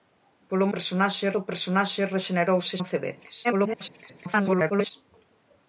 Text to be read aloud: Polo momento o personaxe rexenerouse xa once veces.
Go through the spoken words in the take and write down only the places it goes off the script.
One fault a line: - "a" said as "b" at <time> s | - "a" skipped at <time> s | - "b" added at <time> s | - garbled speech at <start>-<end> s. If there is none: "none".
- "momento" said as "personaxe" at 0.7 s
- "xa" skipped at 2.7 s
- garbled speech at 3.4-4.9 s